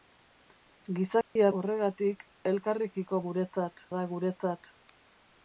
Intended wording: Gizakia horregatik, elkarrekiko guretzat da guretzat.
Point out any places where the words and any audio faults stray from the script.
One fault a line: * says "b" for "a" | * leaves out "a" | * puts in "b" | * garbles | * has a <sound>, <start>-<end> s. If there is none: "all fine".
* has a dropout, 1.2-1.4 s